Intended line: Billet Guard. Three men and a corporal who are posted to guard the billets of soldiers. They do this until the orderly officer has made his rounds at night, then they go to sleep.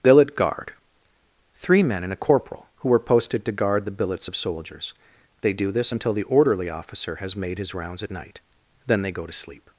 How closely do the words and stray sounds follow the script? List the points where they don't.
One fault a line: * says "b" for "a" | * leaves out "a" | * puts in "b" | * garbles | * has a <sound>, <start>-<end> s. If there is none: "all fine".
* says "were" for "are"